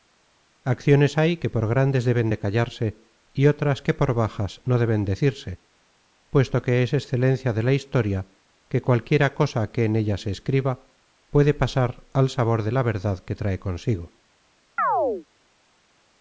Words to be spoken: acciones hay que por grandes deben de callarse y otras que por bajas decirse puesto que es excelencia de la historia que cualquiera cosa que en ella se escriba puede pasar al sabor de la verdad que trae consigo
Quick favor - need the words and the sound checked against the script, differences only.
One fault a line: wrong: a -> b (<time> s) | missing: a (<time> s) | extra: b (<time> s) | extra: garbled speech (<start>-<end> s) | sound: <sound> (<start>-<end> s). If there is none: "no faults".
extra: no deben (4.6 s)
sound: chirp (14.8-15.3 s)